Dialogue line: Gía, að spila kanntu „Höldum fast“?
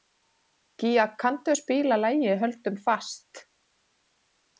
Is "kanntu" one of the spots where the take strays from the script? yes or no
yes